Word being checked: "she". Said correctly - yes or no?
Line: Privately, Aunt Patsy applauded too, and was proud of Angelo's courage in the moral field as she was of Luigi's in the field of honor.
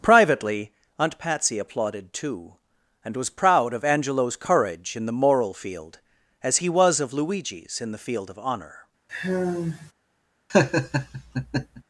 no